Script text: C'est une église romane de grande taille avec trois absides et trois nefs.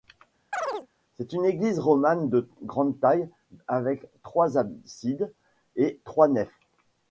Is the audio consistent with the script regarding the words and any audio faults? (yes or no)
no